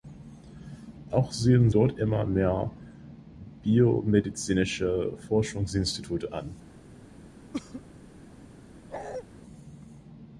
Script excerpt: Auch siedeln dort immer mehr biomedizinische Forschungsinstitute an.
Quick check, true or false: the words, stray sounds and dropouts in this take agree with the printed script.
false